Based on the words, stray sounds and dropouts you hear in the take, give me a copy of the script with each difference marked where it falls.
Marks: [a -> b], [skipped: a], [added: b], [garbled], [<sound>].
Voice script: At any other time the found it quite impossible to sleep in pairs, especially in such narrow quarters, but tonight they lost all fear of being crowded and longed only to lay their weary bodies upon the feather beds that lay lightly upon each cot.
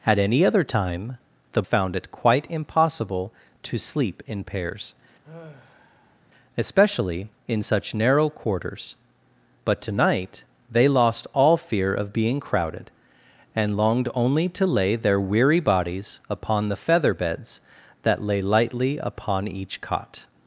At any other time the found it quite impossible to sleep in pairs, [sigh] especially in such narrow quarters, but tonight they lost all fear of being crowded and longed only to lay their weary bodies upon the feather beds that lay lightly upon each cot.